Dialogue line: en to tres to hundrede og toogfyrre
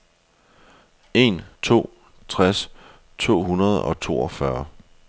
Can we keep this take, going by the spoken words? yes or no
yes